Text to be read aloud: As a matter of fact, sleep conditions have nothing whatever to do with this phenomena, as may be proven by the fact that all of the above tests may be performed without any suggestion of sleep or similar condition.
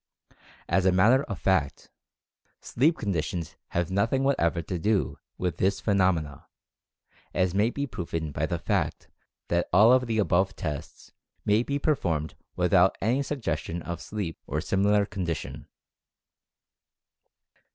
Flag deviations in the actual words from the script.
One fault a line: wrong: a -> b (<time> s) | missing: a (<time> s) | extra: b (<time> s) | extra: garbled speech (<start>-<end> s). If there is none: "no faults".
no faults